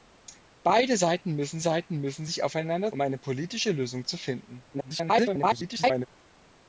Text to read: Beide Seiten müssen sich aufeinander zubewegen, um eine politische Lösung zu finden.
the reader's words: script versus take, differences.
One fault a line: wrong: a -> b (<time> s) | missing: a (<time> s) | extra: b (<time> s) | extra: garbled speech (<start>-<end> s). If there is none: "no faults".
extra: Seiten müssen (1.6 s)
missing: zubewegen (2.9 s)
extra: garbled speech (4.7-6.1 s)